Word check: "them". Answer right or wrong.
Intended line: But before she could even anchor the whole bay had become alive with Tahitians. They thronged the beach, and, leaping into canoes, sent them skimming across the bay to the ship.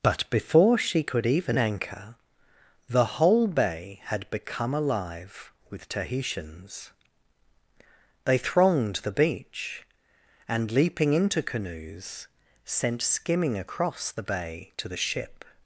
wrong